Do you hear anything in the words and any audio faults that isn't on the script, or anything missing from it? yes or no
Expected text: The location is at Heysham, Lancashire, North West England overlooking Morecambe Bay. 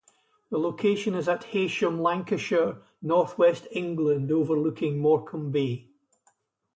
no